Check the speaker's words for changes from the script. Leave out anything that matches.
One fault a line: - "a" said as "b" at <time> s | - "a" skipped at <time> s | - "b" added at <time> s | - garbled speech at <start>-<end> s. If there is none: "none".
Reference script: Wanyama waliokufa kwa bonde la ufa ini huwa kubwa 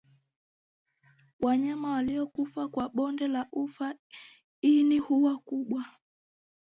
none